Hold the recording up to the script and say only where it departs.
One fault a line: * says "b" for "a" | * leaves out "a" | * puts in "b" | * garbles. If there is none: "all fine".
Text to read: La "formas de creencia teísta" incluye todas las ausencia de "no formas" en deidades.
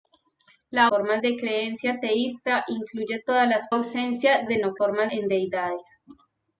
all fine